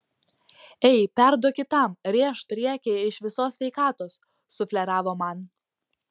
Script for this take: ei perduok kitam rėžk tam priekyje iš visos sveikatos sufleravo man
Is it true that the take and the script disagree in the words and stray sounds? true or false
true